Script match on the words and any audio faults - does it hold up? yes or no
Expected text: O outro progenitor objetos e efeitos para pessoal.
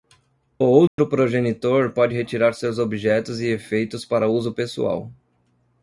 no